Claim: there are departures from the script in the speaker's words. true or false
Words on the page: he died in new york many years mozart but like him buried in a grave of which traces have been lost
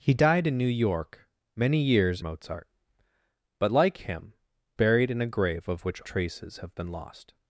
false